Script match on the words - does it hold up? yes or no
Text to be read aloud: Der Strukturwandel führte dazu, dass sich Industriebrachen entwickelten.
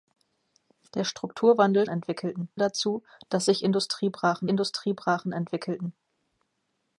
no